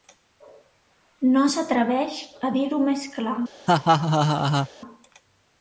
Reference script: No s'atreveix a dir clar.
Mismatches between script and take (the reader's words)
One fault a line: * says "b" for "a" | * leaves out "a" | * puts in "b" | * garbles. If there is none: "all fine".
* puts in "ho més"